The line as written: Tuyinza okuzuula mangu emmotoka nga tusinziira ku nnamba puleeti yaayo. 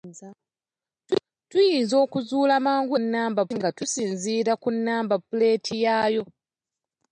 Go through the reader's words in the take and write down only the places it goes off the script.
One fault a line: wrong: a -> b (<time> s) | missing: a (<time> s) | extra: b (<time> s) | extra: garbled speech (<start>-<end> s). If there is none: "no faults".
wrong: emmotoka -> nnamba (3.0 s)